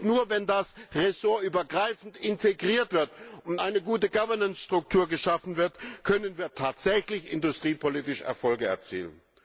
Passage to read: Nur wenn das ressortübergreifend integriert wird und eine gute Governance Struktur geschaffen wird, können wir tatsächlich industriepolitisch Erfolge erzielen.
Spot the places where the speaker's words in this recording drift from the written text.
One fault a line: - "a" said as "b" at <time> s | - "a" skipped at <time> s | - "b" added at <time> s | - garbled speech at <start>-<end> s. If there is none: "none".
none